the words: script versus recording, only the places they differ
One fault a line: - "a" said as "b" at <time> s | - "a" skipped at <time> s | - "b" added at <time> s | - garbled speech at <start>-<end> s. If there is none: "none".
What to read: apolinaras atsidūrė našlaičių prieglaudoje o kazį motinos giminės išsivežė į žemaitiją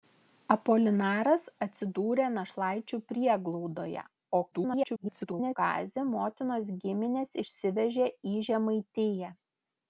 - garbled speech at 4.5-5.6 s